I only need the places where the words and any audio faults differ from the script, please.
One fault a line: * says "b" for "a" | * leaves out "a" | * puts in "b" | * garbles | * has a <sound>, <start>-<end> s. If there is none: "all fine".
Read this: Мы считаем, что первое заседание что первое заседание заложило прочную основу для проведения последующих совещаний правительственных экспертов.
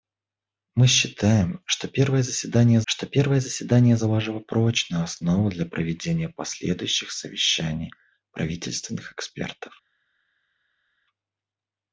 all fine